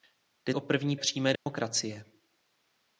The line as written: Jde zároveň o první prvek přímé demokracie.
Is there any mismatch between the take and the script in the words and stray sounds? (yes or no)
yes